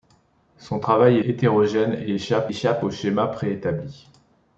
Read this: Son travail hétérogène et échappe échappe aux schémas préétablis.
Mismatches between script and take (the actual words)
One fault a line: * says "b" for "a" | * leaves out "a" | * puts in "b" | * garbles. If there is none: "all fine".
all fine